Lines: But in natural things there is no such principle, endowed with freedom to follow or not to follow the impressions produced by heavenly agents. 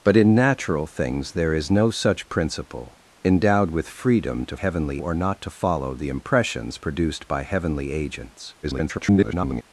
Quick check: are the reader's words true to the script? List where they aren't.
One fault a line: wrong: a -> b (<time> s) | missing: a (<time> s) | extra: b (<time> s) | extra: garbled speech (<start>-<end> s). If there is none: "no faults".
wrong: follow -> heavenly (4.5 s)
extra: garbled speech (8.6-9.6 s)